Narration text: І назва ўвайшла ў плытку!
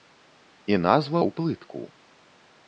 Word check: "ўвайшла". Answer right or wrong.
wrong